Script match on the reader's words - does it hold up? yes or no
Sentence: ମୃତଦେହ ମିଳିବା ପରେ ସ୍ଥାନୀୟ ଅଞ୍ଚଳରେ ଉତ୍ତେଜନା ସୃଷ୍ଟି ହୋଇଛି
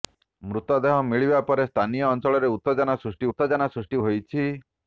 no